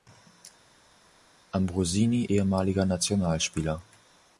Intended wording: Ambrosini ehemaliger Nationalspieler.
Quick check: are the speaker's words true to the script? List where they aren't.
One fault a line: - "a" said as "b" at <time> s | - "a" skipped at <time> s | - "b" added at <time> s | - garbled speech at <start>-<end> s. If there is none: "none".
none